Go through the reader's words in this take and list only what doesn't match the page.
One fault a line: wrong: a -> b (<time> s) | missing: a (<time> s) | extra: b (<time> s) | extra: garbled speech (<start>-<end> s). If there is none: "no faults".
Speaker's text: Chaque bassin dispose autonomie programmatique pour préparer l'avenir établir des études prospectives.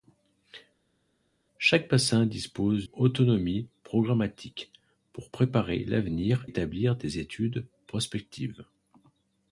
no faults